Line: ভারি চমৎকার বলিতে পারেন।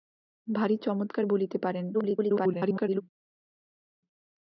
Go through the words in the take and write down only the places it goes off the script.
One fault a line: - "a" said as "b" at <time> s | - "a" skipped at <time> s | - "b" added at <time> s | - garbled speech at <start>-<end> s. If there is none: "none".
- garbled speech at 1.9-3.0 s